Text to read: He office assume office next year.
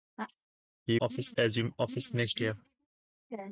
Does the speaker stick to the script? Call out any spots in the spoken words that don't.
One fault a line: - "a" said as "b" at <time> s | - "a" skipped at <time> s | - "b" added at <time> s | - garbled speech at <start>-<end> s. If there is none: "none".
none